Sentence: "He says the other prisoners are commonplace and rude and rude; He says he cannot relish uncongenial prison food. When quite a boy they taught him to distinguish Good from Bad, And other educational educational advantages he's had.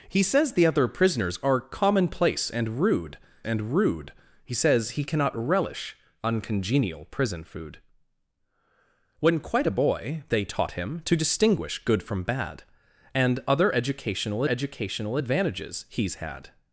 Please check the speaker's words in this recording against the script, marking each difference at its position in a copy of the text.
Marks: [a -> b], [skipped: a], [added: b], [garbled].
"He says the other prisoners are commonplace and rude and rude; He says he cannot relish uncongenial prison food. When quite a boy they taught him to distinguish Good from Bad, And other educational educational advantages he's had.